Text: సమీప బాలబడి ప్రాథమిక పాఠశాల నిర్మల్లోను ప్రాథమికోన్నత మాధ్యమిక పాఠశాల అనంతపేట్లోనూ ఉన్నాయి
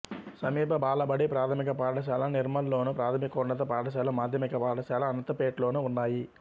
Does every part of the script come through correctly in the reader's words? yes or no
no